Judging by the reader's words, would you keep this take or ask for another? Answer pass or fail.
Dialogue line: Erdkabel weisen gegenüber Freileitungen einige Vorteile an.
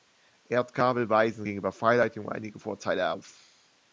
fail